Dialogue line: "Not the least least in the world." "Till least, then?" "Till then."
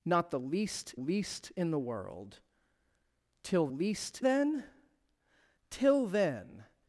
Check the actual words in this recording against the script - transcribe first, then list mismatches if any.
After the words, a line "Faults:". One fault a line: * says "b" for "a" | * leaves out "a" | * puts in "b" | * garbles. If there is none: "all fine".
"Not the least least in the world." "Till least, then?" "Till then."
Faults:
all fine